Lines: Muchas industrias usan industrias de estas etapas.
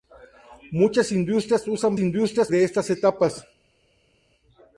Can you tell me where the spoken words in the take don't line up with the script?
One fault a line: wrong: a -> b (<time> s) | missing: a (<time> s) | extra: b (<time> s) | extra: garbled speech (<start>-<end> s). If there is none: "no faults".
no faults